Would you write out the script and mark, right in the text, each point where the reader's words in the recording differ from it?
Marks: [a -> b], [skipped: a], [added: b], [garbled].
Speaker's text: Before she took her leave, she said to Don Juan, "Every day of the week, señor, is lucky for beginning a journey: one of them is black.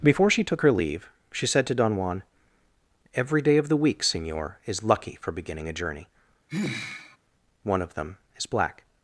Before she took her leave, she said to Don Juan, "Every day of the week, señor, is lucky for beginning a journey: one of them is black.